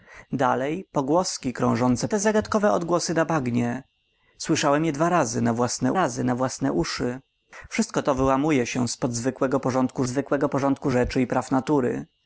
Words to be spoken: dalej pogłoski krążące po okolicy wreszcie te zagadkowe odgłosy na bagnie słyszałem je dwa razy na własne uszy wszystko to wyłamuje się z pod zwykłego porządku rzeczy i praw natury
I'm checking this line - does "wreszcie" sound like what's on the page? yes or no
no